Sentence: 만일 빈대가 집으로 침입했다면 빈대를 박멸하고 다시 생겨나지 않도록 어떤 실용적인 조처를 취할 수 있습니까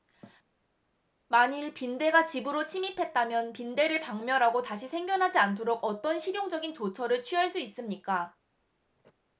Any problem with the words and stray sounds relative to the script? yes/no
no